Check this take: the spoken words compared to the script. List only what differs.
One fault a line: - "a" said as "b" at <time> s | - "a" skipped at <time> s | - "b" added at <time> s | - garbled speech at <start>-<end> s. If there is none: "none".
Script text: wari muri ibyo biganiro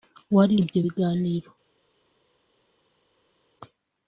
- "muri" skipped at 0.6 s